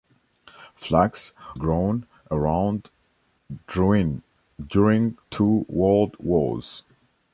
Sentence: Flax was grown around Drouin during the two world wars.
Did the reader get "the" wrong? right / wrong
wrong